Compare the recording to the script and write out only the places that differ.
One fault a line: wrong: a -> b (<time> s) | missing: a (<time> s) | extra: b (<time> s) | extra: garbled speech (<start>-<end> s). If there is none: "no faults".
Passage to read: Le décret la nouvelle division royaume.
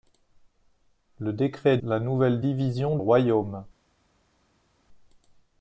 no faults